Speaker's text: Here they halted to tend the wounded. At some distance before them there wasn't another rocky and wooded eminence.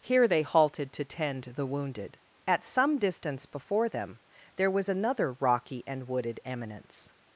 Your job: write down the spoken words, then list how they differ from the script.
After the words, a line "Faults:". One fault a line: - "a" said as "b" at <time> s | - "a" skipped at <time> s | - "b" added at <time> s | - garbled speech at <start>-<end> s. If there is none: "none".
Here they halted to tend the wounded. At some distance before them there was another rocky and wooded eminence.
Faults:
- "wasn't" said as "was" at 4.7 s